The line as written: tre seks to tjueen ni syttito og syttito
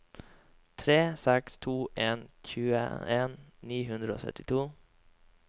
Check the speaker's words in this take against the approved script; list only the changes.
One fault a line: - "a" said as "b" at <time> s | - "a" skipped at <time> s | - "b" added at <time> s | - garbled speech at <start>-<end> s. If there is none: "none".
- "en" added at 2.1 s
- "syttito" said as "hundre" at 3.9 s